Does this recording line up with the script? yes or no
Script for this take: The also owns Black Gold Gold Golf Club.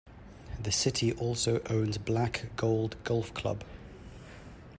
no